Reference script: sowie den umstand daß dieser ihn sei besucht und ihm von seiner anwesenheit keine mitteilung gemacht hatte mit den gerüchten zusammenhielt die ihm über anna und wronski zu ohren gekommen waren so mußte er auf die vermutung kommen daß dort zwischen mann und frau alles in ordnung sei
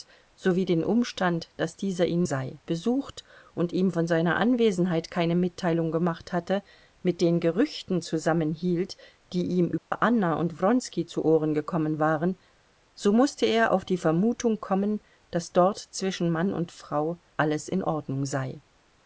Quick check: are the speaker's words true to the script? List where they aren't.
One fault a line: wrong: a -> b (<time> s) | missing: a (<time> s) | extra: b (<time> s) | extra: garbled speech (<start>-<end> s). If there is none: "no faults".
no faults